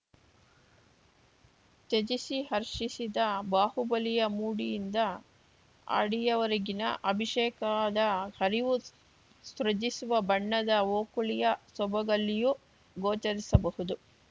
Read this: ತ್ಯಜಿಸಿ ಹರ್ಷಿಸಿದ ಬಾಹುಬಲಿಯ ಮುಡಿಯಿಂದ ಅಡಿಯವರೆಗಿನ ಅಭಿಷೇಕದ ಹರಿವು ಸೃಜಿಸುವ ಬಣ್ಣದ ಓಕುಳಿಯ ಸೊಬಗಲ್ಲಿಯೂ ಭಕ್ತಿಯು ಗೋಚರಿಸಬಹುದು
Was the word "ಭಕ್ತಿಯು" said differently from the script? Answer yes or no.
yes